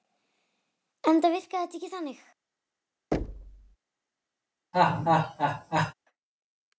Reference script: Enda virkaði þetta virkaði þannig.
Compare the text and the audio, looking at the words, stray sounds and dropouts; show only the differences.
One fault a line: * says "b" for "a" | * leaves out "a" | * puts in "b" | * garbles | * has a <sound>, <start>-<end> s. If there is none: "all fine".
* says "ekki" for "virkaði"
* has a thud, 3.1-3.8 s
* has a laugh, 4.7-5.9 s